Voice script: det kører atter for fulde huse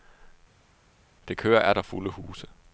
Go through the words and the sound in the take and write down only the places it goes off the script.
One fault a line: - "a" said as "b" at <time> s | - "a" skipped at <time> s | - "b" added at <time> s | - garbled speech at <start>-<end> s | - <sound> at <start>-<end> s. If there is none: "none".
- "for" skipped at 1.8 s